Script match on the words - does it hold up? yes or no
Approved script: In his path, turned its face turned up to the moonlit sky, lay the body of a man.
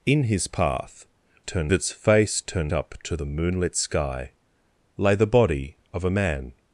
yes